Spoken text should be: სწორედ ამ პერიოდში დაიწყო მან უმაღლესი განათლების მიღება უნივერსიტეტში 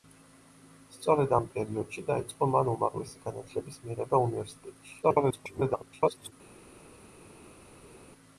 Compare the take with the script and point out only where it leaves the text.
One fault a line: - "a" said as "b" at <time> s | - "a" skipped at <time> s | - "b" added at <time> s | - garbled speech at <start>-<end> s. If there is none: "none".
- garbled speech at 5.0-6.3 s